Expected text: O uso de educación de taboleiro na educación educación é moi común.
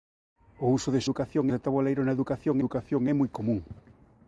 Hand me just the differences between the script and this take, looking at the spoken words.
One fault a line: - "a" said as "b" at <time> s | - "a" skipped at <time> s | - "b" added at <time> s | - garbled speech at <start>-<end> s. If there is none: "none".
none